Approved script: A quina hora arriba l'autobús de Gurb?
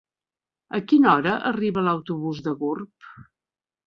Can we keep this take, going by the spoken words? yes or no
yes